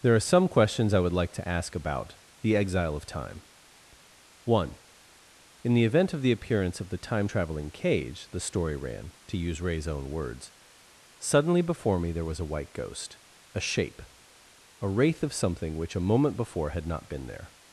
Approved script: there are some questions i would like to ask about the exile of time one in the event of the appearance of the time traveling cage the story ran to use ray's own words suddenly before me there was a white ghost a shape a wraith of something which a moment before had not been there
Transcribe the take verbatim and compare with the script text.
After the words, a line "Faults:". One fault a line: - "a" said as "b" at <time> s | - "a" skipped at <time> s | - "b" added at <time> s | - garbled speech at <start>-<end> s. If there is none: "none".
there are some questions i would like to ask about the exile of time one in the event of the appearance of the time traveling cage the story ran to use ray's own words suddenly before me there was a white ghost a shape a wraith of something which a moment before had not been there
Faults:
none